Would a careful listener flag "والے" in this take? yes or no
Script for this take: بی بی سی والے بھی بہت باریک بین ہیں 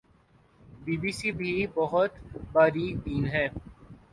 yes